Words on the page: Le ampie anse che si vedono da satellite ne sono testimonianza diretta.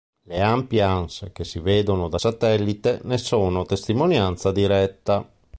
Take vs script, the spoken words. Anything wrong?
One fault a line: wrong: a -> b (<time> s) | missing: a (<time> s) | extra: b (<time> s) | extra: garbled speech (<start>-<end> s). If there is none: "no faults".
no faults